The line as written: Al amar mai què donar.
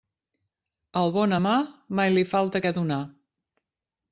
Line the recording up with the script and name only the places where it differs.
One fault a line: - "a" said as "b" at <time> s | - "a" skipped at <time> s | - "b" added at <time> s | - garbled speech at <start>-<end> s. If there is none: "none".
- "bon" added at 1.2 s
- "li falta" added at 2.1 s